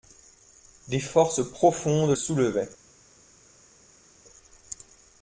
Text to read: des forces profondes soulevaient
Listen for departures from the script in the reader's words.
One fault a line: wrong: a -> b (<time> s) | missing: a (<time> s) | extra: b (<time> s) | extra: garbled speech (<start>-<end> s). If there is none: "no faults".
no faults